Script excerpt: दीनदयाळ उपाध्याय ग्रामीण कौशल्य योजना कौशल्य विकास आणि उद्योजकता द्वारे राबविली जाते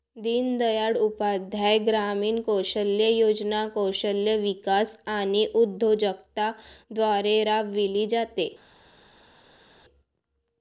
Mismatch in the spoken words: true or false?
false